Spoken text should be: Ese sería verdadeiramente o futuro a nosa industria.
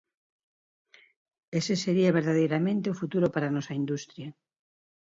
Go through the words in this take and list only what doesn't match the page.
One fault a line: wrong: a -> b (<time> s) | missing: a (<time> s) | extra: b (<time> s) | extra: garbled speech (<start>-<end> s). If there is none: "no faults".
extra: para (3.3 s)